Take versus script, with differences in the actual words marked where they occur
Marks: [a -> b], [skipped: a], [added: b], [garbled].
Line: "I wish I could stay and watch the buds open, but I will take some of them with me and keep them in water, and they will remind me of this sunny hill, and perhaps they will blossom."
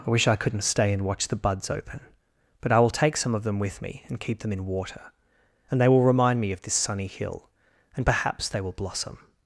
"I wish I [could -> couldn't] stay and watch the buds open, but I will take some of them with me and keep them in water, and they will remind me of this sunny hill, and perhaps they will blossom."